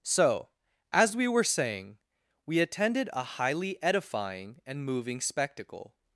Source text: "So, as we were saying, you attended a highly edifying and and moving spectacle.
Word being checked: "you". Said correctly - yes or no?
no